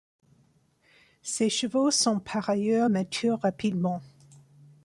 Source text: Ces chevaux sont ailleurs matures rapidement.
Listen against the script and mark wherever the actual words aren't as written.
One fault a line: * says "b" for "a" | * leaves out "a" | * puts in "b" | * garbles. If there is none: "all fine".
* puts in "par"